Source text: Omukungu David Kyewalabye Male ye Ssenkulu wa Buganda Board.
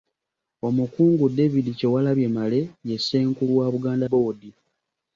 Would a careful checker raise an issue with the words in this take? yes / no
no